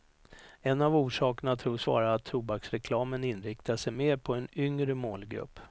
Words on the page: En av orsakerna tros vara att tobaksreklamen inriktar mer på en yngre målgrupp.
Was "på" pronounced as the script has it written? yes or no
yes